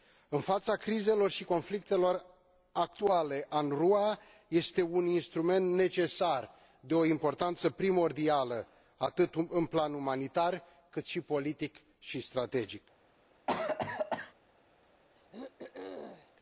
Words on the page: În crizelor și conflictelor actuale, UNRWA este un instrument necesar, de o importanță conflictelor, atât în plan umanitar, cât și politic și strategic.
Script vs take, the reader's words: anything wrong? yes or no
yes